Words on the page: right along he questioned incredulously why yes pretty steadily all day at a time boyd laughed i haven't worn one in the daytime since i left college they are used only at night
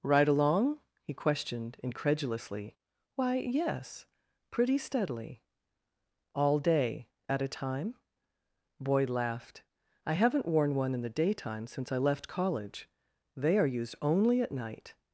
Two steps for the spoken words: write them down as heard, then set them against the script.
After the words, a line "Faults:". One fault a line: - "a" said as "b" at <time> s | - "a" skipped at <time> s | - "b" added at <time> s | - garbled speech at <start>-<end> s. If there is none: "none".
right along he questioned incredulously why yes pretty steadily all day at a time boyd laughed i haven't worn one in the daytime since i left college they are used only at night
Faults:
none